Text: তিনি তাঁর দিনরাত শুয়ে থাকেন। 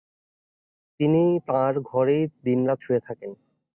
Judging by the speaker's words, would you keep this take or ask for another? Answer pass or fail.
fail